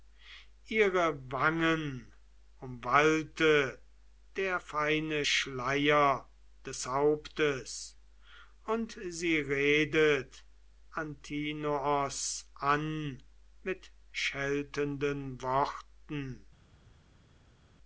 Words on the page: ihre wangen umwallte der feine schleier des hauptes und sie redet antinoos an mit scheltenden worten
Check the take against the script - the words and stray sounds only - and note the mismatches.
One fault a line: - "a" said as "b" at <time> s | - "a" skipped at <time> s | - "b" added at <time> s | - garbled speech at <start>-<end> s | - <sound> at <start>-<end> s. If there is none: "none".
none